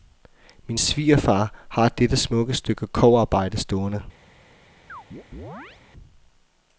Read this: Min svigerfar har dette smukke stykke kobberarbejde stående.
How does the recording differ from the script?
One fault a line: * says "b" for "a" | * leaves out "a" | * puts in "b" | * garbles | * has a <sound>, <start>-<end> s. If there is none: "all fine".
* has a chirp, 4.9-5.8 s